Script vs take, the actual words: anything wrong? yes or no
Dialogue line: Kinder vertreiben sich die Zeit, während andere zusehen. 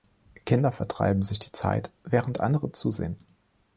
no